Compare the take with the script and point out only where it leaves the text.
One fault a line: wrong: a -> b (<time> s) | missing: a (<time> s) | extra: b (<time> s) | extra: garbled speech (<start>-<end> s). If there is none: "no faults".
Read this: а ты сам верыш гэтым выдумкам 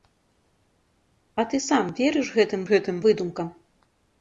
extra: гэтым (2.7 s)